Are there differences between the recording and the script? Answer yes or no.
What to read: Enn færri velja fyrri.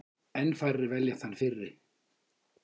yes